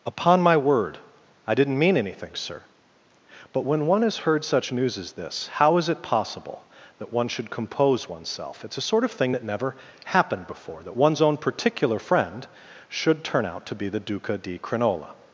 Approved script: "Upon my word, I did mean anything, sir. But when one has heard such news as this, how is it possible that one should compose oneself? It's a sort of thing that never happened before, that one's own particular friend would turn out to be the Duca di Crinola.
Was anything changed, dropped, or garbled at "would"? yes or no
yes